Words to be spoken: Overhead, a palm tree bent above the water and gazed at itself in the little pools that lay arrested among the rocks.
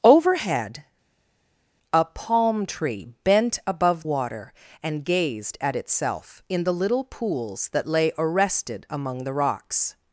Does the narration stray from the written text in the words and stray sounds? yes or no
yes